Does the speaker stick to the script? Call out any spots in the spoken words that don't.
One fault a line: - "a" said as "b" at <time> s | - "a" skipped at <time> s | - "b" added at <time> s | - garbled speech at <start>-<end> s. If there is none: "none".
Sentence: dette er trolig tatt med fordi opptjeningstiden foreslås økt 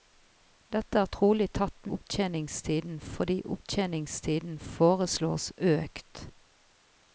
- "med" said as "opptjeningstiden" at 2.0 s